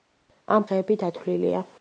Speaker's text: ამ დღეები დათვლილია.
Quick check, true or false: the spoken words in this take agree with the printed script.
true